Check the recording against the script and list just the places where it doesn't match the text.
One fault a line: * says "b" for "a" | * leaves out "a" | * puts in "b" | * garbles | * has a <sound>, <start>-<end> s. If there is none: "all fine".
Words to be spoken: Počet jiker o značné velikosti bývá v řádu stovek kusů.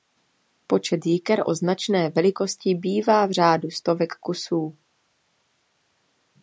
all fine